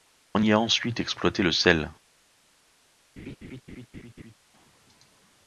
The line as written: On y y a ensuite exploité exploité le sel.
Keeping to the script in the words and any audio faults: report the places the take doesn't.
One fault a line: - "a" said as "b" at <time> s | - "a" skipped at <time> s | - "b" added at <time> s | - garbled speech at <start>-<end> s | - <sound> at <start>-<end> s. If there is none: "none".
- "y" skipped at 0.5 s
- "exploité" skipped at 1.4 s
- laugh at 3.2-4.3 s